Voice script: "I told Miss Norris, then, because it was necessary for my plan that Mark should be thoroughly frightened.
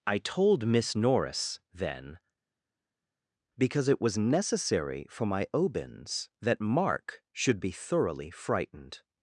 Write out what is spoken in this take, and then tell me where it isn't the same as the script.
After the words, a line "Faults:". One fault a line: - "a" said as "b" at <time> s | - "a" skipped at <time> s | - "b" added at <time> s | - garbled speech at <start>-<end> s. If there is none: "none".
"I told Miss Norris, then, because it was necessary for my obins that Mark should be thoroughly frightened.
Faults:
- "plan" said as "obins" at 5.5 s